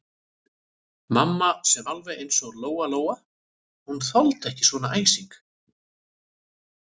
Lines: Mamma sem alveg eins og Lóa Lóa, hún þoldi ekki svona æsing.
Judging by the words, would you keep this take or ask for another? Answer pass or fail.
pass